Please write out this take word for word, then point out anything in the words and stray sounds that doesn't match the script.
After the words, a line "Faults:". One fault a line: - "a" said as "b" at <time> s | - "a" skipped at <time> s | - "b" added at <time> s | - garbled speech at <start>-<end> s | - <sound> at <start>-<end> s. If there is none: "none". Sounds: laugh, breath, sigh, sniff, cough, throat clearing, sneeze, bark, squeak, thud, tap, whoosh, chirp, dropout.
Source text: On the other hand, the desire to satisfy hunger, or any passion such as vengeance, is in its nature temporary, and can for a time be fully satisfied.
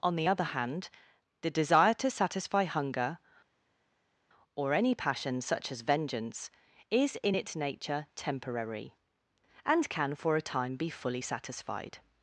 On the other hand, the desire to satisfy hunger, or any passion such as vengeance, is in its nature temporary, and can for a time be fully satisfied.
Faults:
none